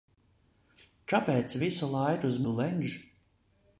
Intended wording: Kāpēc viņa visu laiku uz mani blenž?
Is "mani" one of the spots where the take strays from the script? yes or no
yes